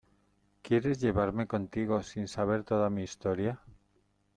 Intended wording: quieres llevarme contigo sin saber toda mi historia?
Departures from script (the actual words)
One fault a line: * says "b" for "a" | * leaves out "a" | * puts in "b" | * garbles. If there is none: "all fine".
all fine